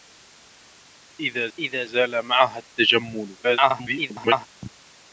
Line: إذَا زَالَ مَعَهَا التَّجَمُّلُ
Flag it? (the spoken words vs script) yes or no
yes